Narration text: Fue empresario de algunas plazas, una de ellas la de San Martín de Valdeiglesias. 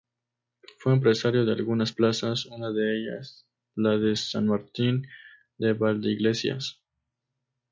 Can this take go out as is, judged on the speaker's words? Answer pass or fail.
pass